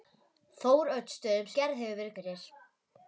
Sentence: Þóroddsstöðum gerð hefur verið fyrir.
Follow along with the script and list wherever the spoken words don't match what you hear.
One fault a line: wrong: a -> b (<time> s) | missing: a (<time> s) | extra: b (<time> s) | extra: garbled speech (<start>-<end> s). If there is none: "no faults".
no faults